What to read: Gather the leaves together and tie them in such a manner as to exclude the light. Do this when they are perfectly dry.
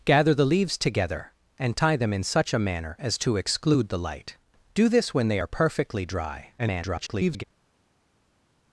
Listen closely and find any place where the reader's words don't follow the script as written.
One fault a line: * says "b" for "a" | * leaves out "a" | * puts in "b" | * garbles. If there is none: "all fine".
* garbles